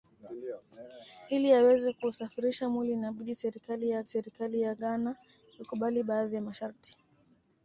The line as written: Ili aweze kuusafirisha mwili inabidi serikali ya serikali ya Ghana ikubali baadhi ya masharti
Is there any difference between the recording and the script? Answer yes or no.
no